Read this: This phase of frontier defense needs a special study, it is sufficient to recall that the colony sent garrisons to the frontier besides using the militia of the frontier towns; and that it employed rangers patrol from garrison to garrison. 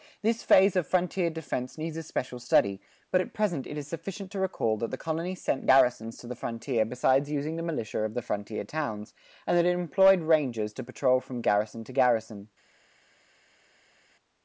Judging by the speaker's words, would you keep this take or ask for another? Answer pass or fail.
fail